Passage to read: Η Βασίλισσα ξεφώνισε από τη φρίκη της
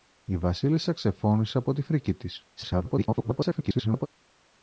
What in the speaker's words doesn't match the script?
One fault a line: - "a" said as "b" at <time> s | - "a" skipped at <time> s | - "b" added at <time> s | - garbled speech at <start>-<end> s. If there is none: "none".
- garbled speech at 2.6-4.1 s